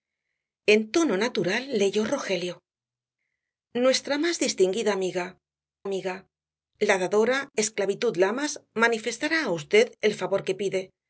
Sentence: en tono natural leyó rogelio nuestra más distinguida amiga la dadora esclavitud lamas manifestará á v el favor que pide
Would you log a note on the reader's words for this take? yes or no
yes